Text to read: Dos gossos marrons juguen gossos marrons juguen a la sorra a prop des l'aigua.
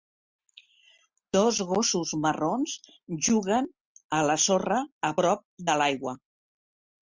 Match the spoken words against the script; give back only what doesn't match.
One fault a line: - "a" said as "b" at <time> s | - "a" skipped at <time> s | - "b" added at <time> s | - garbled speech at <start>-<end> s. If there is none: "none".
- "gossos marrons juguen" skipped at 3.7 s
- "des" said as "de" at 5.7 s